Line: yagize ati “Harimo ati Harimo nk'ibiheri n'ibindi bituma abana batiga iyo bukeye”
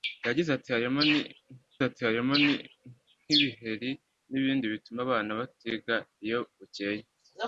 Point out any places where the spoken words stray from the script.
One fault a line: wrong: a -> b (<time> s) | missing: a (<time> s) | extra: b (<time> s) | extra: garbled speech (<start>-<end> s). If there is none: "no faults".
no faults